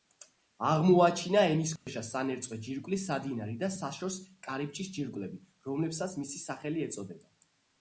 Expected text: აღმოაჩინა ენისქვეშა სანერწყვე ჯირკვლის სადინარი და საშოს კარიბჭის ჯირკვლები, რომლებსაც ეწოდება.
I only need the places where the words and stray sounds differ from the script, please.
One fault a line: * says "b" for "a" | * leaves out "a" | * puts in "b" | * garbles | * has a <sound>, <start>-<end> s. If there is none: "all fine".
* has a dropout, 1.8-1.9 s
* puts in "მისი სახელი"